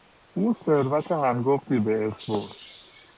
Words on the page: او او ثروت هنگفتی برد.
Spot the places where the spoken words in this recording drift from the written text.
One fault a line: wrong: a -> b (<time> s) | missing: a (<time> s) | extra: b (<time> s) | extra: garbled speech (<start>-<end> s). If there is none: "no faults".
missing: او (0.5 s)
extra: به ارث (1.8 s)